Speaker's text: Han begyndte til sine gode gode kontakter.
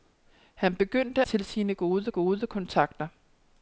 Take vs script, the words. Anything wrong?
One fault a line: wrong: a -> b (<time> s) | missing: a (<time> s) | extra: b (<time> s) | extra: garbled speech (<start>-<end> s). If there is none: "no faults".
no faults